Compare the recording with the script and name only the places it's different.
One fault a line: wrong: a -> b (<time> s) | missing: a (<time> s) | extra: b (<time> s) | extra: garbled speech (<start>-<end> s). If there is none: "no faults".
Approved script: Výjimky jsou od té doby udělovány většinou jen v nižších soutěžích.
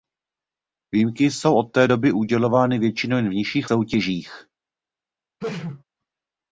no faults